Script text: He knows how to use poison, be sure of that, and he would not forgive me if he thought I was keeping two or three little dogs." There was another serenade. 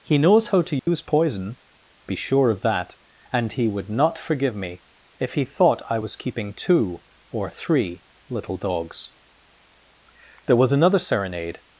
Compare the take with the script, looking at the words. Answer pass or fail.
pass